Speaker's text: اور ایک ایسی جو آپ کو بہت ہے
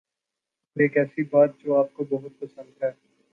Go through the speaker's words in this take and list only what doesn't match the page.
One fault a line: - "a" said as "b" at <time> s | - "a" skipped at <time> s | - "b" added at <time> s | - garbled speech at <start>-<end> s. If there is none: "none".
- "بات" added at 1.3 s
- "پسند" added at 2.4 s